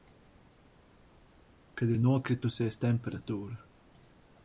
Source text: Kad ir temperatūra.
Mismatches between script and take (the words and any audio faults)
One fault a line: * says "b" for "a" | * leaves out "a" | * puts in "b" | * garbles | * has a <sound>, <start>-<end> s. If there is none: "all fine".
* puts in "nokritusies"